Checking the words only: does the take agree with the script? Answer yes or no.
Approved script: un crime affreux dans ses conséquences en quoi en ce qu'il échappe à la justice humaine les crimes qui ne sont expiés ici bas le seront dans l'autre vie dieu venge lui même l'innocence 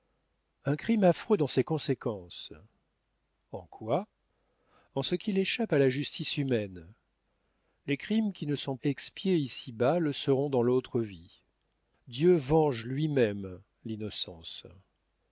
yes